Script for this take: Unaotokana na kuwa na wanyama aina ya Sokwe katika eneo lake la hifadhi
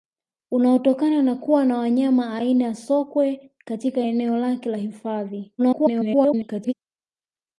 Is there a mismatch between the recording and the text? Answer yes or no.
yes